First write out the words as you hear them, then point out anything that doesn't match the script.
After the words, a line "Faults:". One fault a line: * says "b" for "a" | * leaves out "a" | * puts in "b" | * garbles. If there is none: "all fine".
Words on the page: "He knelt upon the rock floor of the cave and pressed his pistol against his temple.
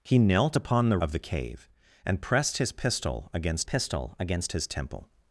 "He knelt upon the of the cave and pressed his pistol against pistol against his temple.
Faults:
* leaves out "rock floor"
* puts in "pistol against"